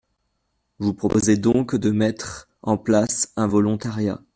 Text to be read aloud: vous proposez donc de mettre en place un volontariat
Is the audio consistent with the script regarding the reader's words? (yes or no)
yes